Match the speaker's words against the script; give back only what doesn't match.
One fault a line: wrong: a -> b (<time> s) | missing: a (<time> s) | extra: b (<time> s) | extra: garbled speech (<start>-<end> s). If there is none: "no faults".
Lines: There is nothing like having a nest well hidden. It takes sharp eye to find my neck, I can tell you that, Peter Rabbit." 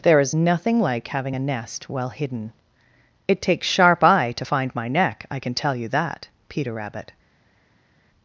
no faults